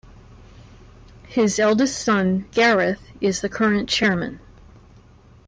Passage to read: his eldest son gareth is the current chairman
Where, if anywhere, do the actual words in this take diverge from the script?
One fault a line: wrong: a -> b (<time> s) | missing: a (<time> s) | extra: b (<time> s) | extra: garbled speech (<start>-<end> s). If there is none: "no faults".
no faults